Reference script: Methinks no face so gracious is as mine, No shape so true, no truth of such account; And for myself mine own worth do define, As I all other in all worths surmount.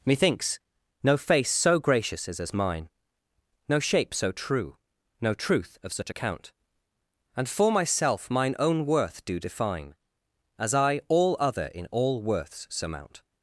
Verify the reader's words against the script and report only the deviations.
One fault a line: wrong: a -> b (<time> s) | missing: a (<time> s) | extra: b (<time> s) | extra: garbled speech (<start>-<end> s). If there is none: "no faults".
no faults